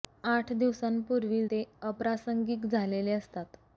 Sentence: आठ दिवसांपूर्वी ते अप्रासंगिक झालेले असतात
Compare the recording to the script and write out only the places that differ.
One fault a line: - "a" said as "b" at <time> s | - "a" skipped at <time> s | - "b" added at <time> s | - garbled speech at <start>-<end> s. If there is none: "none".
none